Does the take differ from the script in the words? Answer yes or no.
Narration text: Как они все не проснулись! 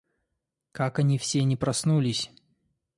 no